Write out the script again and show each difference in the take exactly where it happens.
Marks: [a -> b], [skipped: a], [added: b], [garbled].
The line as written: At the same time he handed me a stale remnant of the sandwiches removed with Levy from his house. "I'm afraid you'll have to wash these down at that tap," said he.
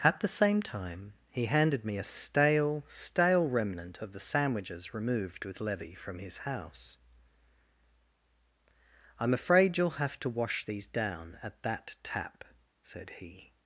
At the same time he handed me a stale [added: stale] remnant of the sandwiches removed with Levy from his house. "I'm afraid you'll have to wash these down at that tap," said he.